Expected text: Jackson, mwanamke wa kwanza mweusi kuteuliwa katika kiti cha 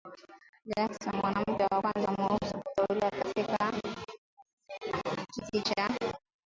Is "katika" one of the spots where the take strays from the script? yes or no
no